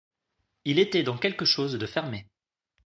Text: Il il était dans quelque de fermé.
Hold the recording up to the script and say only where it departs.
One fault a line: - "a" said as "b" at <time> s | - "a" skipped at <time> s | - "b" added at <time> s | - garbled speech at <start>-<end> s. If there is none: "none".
- "il" skipped at 0.8 s
- "chose" added at 1.4 s